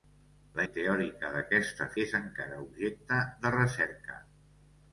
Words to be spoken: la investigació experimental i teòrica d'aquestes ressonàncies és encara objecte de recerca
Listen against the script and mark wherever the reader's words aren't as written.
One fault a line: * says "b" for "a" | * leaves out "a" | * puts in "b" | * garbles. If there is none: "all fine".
* leaves out "investigació experimental"
* leaves out "ressonàncies"